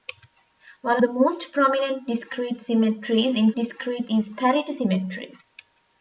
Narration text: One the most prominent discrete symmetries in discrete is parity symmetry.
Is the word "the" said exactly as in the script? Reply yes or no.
yes